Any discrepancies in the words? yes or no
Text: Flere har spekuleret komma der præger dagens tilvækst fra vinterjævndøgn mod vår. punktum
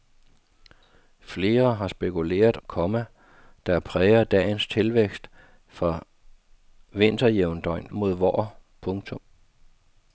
no